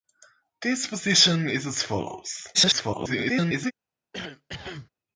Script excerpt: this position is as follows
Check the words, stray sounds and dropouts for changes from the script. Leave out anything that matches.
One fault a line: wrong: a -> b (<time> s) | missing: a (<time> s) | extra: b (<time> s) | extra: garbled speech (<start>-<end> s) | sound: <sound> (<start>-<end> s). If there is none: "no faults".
extra: garbled speech (2.5-3.7 s)
sound: cough (4.1-4.9 s)